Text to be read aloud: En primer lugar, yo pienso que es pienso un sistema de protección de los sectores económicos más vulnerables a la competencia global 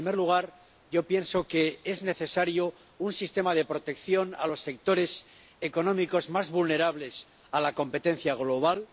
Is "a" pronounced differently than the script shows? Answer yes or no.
no